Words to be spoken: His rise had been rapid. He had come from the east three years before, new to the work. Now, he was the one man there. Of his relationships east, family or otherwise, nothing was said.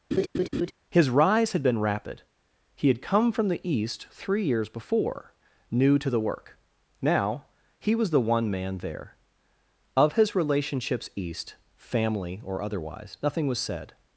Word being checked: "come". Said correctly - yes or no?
yes